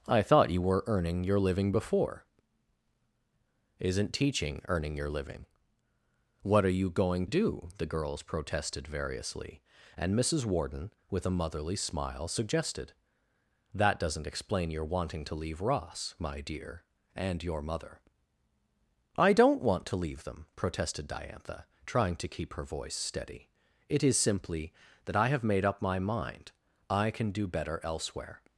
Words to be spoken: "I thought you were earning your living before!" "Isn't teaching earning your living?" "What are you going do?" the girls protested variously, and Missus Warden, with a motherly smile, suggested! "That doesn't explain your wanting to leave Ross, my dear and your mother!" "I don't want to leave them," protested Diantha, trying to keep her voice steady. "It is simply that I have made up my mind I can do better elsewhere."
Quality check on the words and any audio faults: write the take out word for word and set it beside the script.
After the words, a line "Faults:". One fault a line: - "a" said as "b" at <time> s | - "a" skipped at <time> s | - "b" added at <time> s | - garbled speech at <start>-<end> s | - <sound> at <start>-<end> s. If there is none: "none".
"I thought you were earning your living before!" "Isn't teaching earning your living?" "What are you going do?" the girls protested variously, and Missus Warden, with a motherly smile, suggested! "That doesn't explain your wanting to leave Ross, my dear and your mother!" "I don't want to leave them," protested Diantha, trying to keep her voice steady. "It is simply that I have made up my mind I can do better elsewhere."
Faults:
none